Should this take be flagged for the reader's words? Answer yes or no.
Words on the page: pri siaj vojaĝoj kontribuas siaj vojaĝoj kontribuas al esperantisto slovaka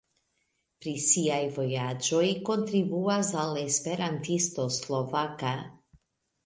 yes